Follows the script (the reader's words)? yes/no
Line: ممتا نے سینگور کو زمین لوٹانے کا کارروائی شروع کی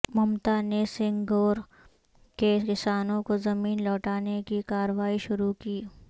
no